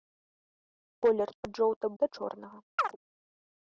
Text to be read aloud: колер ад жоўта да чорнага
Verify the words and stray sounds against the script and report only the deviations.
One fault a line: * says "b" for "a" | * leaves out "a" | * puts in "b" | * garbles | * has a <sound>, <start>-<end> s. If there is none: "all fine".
* has a chirp, 2.8-3.0 s